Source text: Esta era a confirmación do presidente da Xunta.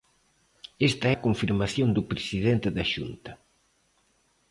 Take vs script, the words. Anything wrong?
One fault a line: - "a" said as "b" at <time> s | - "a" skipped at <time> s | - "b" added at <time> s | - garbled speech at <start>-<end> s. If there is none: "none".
- "era" skipped at 1.1 s